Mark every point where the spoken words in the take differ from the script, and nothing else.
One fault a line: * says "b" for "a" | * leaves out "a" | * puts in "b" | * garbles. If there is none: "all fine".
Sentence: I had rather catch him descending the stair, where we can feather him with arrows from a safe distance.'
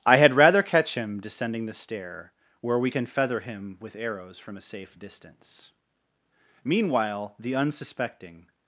* puts in "Meanwhile the unsuspecting"